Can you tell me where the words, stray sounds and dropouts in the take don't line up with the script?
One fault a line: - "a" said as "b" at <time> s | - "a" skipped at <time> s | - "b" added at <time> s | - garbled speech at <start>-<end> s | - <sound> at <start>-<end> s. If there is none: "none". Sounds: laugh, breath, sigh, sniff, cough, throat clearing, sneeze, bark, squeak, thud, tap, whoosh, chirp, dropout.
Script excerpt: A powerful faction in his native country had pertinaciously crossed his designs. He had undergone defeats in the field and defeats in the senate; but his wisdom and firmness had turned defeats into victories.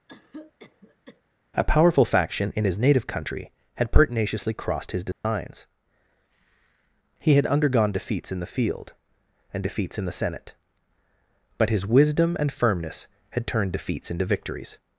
- cough at 0.1-1.2 s
- dropout at 5.1-5.2 s